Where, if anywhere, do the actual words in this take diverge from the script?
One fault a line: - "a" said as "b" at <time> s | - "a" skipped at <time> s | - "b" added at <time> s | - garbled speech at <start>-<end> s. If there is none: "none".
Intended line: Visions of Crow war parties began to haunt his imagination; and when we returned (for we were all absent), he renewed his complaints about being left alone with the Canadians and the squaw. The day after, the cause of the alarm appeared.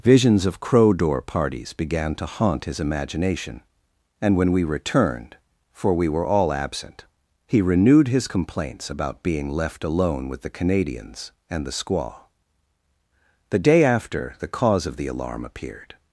- "war" said as "door" at 0.9 s